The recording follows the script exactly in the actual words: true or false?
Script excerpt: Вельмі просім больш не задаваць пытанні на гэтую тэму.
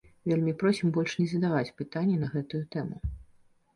true